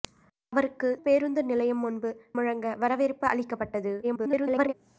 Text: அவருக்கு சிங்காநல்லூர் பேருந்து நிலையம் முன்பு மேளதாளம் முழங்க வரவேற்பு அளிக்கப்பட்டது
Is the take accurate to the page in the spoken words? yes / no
no